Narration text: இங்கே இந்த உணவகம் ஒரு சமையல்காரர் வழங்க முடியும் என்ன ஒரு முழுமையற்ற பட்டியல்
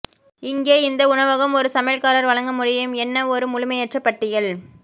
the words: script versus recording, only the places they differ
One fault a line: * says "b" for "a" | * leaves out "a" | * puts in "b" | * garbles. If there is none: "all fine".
all fine